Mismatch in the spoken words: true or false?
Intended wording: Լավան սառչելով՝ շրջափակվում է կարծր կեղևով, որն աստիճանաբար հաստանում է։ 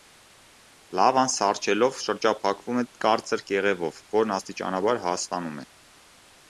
false